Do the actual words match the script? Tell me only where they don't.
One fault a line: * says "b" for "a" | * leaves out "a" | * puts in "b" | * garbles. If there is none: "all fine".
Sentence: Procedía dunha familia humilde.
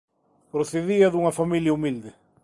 all fine